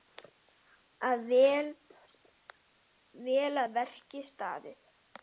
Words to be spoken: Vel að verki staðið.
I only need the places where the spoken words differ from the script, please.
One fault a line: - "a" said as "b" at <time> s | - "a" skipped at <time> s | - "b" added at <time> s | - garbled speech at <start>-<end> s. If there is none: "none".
none